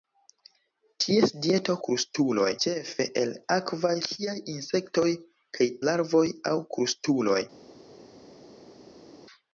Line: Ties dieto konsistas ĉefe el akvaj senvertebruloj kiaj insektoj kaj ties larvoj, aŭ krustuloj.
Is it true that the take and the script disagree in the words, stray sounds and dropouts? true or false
true